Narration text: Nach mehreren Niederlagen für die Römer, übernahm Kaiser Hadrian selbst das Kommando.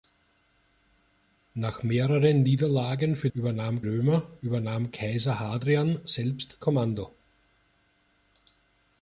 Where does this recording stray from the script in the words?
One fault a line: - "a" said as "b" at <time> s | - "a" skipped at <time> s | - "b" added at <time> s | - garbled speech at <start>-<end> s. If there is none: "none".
- "die" said as "übernahm" at 3.3 s
- "das" skipped at 6.6 s